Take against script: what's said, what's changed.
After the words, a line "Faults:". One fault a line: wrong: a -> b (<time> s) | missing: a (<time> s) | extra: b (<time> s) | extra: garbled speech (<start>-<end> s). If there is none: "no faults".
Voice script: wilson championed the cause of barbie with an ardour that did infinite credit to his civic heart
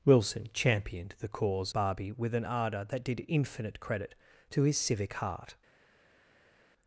wilson championed the cause barbie with an ardour that did infinite credit to his civic heart
Faults:
missing: of (1.8 s)